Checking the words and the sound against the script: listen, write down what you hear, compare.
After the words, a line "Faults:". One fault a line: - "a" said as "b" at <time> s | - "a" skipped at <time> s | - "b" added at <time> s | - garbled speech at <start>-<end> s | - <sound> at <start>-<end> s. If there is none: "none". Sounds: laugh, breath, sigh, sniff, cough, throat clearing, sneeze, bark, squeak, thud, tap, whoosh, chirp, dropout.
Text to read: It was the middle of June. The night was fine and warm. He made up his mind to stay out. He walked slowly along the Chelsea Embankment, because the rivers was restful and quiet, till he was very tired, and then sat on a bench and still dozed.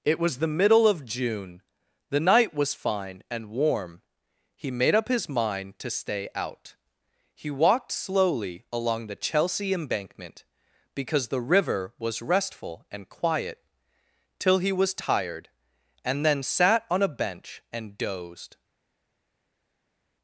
It was the middle of June. The night was fine and warm. He made up his mind to stay out. He walked slowly along the Chelsea Embankment, because the river was restful and quiet, till he was tired, and then sat on a bench and dozed.
Faults:
- "rivers" said as "river" at 11.4 s
- "very" skipped at 14.9 s
- "still" skipped at 18.0 s